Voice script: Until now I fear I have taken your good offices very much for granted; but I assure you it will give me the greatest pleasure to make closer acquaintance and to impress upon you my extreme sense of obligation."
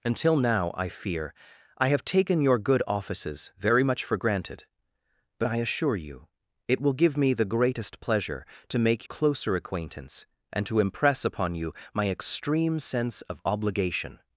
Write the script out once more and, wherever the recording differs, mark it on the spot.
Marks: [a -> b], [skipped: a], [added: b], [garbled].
Until now I fear I have taken your good offices very much for granted; but I assure you it will give me the greatest pleasure to make closer acquaintance and to impress upon you my extreme sense of obligation."